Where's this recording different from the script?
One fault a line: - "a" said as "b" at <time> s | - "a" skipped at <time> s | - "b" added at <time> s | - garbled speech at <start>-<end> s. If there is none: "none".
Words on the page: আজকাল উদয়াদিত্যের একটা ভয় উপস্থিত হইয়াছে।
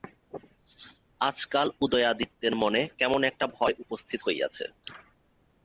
- "মনে কেমন" added at 2.6 s